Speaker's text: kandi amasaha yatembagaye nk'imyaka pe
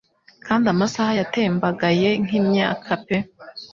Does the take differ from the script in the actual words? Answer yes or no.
no